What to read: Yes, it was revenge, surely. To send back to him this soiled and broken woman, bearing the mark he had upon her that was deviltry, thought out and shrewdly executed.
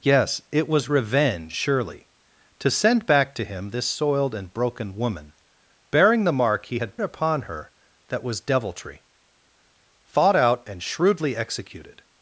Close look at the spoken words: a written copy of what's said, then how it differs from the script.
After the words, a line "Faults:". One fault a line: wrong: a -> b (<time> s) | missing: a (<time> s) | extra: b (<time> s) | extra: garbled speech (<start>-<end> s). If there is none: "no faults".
Yes, it was revenge, surely. To send back to him this soiled and broken woman, bearing the mark he had upon her that was deviltry, thought out and shrewdly executed.
Faults:
no faults